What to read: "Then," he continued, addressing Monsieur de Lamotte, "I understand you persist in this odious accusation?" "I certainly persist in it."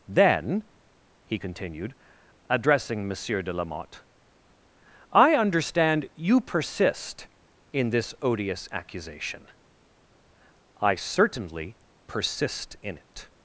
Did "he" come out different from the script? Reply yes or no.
no